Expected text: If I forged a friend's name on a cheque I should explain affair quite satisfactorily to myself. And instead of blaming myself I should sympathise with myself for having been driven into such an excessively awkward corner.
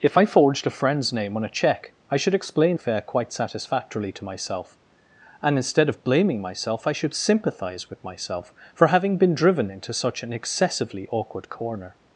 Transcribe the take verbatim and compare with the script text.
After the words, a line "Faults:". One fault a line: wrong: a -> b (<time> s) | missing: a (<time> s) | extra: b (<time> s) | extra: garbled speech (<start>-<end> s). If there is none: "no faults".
If I forged a friend's name on a cheque I should explain affair quite satisfactorily to myself. And instead of blaming myself I should sympathise with myself for having been driven into such an excessively awkward corner.
Faults:
no faults